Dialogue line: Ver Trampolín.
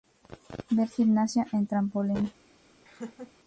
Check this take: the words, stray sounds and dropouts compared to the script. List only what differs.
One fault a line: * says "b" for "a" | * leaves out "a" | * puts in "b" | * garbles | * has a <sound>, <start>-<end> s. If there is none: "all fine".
* puts in "Gimnasia en"
* has a laugh, 2.8-3.3 s